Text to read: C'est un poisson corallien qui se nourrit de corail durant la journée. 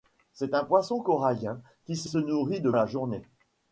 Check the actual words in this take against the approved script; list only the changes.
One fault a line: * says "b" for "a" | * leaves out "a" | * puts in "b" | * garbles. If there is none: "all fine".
* puts in "se"
* leaves out "corail durant"